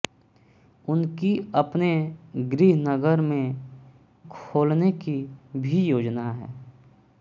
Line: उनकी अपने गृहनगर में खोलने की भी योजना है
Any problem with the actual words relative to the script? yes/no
no